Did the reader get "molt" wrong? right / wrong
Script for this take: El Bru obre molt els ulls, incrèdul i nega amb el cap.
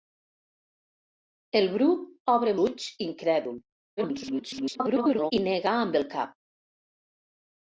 wrong